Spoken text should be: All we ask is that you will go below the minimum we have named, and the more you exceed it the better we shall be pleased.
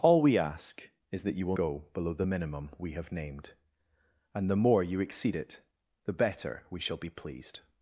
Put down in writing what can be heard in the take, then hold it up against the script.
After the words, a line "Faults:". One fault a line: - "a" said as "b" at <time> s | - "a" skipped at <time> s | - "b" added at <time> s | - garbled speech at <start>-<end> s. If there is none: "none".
All we ask is that you will go below the minimum we have named, and the more you exceed it the better we shall be pleased.
Faults:
none